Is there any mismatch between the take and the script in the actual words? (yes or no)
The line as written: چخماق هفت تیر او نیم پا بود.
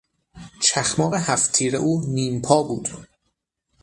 no